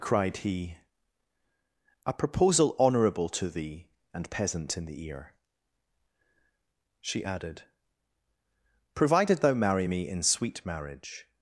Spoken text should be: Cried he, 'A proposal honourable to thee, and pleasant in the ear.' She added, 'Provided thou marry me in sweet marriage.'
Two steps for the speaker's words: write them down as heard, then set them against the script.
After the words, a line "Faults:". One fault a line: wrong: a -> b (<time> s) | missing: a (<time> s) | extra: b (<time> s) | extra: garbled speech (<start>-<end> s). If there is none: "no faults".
Cried he, 'A proposal honourable to thee, and peasant in the ear.' She added, 'Provided thou marry me in sweet marriage.'
Faults:
wrong: pleasant -> peasant (4.3 s)